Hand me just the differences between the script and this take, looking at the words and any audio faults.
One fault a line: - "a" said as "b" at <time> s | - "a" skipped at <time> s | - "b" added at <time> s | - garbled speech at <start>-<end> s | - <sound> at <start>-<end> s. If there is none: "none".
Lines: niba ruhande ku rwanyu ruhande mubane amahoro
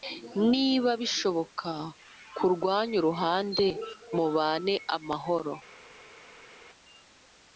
- "ruhande" said as "bishoboka" at 1.0 s